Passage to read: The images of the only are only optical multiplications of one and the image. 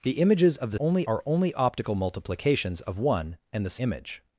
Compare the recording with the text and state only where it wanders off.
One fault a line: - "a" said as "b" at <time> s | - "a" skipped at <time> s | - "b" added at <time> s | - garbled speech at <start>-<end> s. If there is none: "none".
none